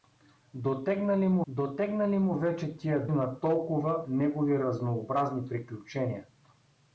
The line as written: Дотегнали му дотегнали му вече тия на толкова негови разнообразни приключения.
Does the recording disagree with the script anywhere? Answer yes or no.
no